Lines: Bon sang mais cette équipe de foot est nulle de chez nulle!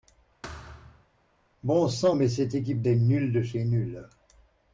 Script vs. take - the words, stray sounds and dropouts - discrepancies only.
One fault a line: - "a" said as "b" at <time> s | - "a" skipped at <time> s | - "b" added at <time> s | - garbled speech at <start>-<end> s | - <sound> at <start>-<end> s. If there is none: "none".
- thud at 0.4-1.1 s
- "de foot" skipped at 2.8 s